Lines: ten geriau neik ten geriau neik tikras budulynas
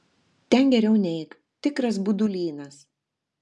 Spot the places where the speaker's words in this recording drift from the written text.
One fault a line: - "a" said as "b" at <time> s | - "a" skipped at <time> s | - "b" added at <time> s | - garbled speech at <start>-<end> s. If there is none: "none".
- "ten geriau neik" skipped at 1.3 s